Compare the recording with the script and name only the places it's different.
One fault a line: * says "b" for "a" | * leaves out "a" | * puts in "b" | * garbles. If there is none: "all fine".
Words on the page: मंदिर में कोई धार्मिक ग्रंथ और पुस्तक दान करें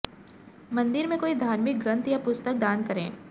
* says "या" for "और"